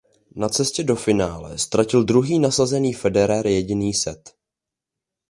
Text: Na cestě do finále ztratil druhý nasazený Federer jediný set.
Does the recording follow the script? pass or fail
pass